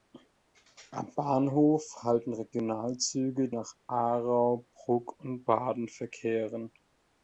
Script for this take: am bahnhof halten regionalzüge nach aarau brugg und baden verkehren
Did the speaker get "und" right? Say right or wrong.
right